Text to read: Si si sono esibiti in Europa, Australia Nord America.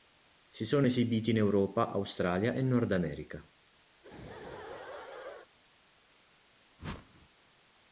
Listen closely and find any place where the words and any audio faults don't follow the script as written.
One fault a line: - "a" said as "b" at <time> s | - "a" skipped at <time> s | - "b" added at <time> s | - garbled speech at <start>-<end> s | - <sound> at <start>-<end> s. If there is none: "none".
- "si" skipped at 0.7 s
- "e" added at 2.5 s
- laugh at 3.9-5.5 s
- whoosh at 6.8-7.3 s